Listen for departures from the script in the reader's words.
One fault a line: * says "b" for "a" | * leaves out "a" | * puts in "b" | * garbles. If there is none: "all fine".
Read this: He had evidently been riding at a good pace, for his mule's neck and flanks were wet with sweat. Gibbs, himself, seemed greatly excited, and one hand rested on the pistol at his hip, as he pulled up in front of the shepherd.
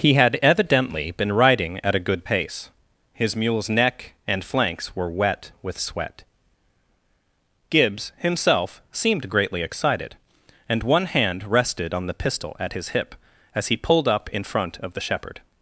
* leaves out "for"